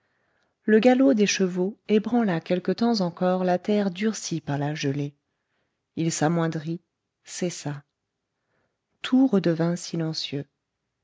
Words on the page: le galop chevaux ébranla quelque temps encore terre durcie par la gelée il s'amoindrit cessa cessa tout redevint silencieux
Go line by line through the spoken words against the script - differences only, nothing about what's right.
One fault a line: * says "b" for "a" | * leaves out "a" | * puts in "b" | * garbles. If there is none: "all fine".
* puts in "des"
* puts in "la"
* leaves out "cessa"